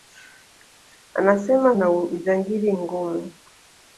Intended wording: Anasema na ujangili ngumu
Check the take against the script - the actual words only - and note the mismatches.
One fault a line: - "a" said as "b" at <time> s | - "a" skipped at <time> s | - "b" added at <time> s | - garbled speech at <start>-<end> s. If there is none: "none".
none